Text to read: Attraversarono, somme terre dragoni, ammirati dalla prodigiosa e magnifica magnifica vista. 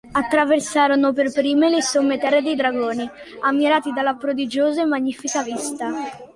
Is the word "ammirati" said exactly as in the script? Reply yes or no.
yes